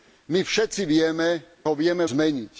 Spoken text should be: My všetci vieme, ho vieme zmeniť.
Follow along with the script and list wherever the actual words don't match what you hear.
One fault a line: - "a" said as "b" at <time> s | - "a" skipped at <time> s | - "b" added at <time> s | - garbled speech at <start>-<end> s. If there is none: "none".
none